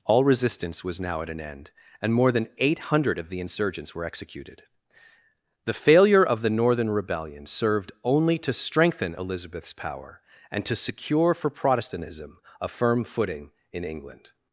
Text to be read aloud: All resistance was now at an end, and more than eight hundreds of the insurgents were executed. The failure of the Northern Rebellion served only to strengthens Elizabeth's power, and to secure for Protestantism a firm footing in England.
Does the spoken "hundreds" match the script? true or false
false